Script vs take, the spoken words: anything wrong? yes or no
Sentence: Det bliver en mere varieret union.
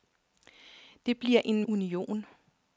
yes